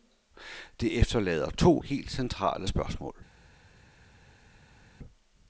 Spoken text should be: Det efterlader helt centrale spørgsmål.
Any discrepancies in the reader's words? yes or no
yes